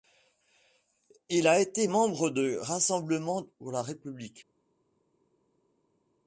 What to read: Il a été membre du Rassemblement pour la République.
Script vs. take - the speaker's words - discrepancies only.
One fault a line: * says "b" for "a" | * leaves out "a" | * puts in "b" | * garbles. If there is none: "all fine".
all fine